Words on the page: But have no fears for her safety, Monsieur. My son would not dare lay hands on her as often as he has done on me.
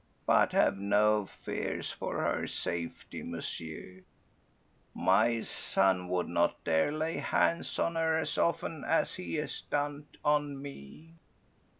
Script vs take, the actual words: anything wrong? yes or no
no